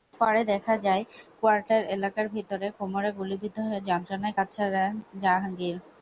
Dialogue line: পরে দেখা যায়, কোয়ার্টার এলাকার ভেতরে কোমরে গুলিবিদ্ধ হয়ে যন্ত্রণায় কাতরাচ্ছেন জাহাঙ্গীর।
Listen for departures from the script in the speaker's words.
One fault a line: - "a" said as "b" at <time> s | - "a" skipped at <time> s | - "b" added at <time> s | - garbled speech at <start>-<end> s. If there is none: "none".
none